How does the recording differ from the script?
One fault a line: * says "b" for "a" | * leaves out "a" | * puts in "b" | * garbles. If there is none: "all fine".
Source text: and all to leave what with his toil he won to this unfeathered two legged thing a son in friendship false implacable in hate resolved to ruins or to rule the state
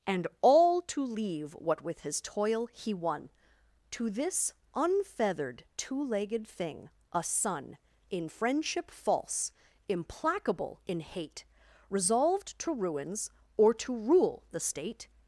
all fine